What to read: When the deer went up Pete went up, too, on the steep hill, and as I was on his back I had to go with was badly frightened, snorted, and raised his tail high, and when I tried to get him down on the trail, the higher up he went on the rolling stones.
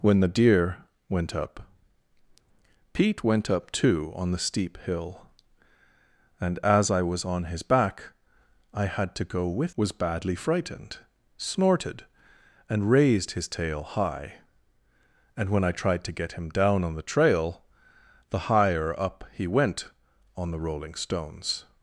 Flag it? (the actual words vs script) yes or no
no